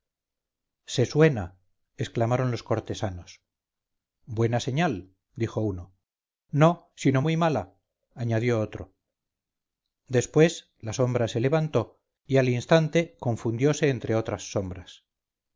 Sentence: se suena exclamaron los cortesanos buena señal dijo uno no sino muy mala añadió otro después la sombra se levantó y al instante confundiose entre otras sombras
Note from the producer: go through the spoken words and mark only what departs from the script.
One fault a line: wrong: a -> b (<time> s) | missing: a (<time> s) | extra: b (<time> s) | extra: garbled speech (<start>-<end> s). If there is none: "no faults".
no faults